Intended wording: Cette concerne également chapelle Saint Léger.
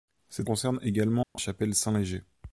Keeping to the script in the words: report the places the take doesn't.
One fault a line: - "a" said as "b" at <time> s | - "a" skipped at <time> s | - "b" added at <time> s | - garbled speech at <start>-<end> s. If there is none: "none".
none